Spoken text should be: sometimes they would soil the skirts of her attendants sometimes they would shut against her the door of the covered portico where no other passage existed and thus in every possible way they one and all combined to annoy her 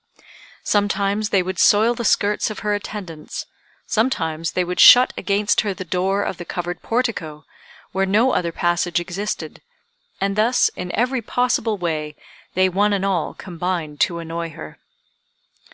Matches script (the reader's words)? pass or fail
pass